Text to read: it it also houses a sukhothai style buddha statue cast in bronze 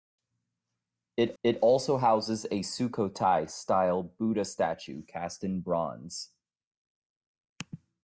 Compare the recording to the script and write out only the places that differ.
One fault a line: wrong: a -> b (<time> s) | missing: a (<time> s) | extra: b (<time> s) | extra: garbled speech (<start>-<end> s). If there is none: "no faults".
no faults